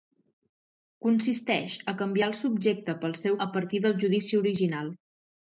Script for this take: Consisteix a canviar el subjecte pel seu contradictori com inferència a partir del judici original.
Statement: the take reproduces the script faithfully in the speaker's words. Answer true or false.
false